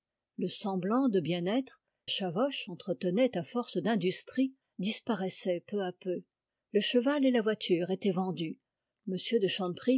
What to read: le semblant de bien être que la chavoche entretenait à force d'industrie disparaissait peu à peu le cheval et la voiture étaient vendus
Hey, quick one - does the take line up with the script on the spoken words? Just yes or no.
no